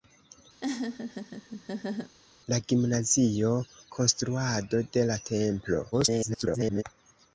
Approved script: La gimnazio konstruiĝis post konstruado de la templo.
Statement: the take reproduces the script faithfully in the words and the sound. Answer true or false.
false